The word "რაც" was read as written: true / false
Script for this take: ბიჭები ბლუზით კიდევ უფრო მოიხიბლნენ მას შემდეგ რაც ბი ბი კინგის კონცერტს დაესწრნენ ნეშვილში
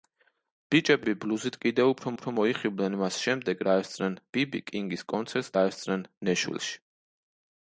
false